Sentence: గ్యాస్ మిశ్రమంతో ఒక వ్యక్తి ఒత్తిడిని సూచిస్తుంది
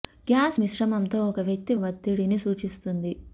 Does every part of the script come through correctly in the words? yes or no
yes